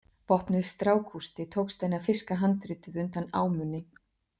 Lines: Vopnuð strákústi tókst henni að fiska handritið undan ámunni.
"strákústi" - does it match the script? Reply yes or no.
yes